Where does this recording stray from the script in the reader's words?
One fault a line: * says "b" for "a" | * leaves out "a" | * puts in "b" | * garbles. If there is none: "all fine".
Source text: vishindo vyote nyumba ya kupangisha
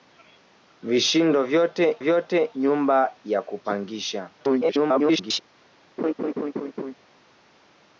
* puts in "vyote"
* garbles